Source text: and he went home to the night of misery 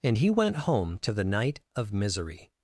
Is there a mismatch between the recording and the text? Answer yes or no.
no